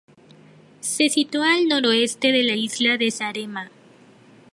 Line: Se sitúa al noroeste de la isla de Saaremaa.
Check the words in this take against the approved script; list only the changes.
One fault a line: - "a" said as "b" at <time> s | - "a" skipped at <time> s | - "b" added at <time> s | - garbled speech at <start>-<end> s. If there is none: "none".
none